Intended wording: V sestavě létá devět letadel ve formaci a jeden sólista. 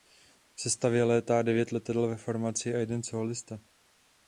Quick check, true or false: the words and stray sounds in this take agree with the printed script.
true